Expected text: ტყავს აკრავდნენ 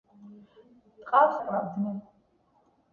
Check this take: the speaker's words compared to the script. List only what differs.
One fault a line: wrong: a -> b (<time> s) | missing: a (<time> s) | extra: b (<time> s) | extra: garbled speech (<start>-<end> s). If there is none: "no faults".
no faults